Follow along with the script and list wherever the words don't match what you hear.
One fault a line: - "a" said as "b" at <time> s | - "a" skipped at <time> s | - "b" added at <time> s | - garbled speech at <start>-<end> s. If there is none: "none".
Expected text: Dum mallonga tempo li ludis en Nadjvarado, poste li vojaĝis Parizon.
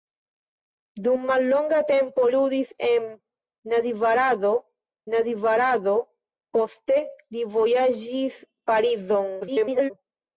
- "li" skipped at 2.2 s
- "Nadjvarado" added at 5.2 s
- garbled speech at 9.4-9.9 s